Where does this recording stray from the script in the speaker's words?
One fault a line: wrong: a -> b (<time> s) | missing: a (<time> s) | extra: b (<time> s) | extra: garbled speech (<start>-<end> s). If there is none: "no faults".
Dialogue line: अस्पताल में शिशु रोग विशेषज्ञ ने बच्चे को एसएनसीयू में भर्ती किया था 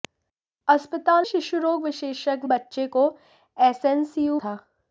missing: में (1.2 s)
missing: ने (2.5 s)
missing: में भर्ती किया (4.4 s)